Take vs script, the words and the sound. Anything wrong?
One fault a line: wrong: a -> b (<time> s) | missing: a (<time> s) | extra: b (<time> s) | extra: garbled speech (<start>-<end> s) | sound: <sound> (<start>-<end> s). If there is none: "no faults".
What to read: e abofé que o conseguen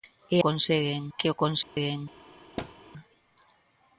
wrong: abofé -> conseguen (0.4 s)
sound: dropout (1.6-1.8 s)
sound: thud (2.6-2.7 s)